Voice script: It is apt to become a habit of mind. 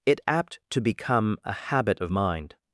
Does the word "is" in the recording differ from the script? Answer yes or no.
yes